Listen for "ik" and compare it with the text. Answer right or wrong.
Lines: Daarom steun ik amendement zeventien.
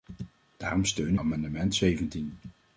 wrong